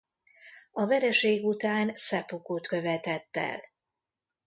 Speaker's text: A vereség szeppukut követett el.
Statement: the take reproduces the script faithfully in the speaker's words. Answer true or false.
false